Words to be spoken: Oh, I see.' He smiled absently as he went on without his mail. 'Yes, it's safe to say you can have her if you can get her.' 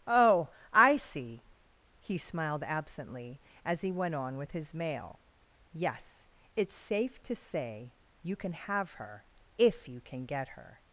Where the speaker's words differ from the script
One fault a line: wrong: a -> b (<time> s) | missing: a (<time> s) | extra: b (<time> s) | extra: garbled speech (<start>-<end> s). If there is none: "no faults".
wrong: without -> with (4.4 s)